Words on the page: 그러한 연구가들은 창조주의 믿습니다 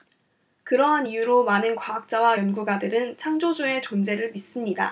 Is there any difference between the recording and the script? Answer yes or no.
yes